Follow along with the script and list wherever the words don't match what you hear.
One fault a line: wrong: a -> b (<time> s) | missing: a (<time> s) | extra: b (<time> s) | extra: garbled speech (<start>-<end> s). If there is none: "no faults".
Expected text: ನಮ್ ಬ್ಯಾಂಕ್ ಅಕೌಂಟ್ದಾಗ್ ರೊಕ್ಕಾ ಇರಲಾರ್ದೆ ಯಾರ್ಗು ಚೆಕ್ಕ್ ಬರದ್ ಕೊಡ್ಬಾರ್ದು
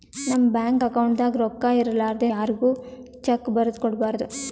no faults